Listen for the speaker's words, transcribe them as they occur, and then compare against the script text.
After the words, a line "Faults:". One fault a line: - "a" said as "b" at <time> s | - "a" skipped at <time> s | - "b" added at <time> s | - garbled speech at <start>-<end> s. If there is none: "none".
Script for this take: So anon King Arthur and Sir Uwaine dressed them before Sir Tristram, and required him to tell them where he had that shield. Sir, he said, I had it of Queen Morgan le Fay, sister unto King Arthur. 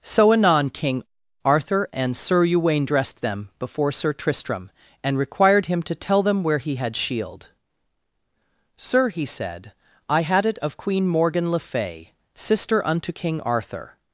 So anon King Arthur and Sir Uwaine dressed them before Sir Tristram, and required him to tell them where he had shield. Sir, he said, I had it of Queen Morgan le Fay, sister unto King Arthur.
Faults:
- "that" skipped at 7.0 s